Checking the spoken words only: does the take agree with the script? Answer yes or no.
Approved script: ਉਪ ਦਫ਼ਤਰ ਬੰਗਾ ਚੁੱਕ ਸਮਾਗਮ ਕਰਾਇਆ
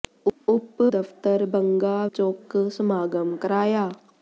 yes